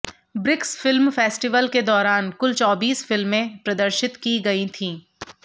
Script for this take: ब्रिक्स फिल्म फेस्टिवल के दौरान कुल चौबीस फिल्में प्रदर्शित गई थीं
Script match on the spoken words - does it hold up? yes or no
no